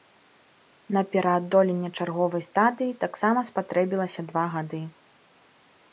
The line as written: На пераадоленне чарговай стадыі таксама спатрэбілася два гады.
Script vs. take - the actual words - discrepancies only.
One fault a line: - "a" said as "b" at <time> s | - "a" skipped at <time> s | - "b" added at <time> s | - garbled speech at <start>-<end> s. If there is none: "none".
none